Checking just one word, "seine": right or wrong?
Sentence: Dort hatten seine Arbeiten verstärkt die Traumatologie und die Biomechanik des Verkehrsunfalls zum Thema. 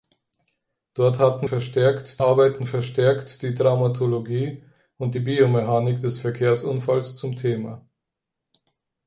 wrong